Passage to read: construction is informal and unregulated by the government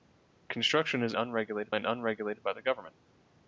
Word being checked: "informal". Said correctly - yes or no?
no